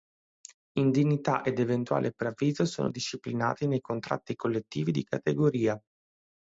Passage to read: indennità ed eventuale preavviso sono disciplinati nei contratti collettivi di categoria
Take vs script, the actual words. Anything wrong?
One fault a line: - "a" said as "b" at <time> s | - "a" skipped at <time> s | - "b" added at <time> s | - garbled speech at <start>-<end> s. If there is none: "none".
none